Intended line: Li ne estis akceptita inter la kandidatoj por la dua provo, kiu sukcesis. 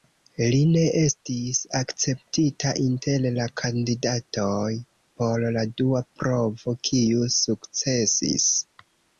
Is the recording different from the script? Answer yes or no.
no